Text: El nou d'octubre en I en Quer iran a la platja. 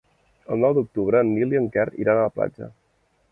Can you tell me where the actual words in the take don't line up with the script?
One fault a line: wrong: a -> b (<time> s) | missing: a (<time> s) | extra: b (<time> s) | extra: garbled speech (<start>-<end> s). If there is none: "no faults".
extra: Nil (1.3 s)